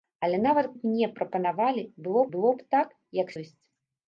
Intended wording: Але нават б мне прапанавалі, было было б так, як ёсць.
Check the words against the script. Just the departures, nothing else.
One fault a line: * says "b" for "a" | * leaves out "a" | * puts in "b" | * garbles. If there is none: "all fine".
all fine